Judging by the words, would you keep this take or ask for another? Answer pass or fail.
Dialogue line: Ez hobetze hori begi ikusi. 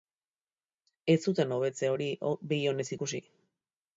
fail